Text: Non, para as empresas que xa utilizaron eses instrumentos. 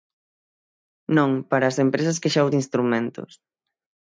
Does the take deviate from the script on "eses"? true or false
true